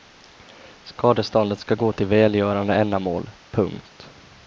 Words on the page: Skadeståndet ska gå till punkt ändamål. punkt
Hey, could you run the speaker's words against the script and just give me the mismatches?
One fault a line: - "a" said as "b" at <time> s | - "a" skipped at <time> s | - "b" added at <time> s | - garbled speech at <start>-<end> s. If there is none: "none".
- "punkt" said as "välgörande" at 2.1 s